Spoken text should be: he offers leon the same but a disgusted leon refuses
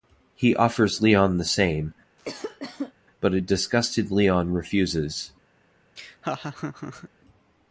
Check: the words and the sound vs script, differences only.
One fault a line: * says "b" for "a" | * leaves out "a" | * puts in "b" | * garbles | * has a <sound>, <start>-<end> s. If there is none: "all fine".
* has a cough, 2.2-2.9 s
* has a laugh, 6.0-7.1 s